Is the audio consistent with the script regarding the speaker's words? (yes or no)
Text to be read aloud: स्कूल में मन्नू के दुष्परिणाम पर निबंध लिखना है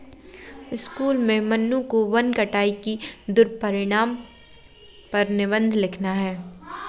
no